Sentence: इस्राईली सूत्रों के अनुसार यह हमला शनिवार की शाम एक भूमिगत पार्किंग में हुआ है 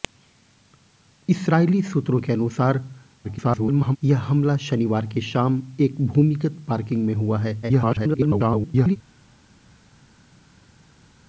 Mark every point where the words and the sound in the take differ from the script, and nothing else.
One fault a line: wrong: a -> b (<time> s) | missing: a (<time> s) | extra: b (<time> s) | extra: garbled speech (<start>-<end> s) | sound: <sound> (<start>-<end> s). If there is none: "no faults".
extra: garbled speech (3.2-4.0 s)
extra: garbled speech (7.6-9.0 s)